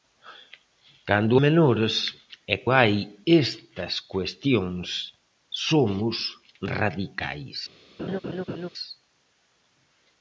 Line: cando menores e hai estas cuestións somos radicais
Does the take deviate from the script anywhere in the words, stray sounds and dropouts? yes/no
yes